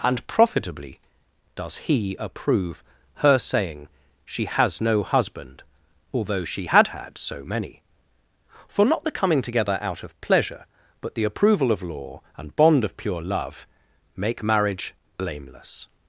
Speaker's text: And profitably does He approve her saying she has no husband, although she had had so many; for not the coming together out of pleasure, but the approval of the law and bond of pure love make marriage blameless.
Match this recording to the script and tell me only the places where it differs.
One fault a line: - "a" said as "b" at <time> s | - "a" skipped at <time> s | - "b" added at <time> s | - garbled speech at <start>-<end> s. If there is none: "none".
- "the" skipped at 11.8 s